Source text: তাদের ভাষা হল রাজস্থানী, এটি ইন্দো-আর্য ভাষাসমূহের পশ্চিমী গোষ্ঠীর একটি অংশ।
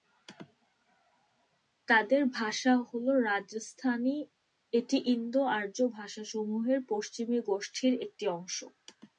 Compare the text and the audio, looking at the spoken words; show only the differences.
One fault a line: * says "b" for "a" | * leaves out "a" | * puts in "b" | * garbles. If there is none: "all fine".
all fine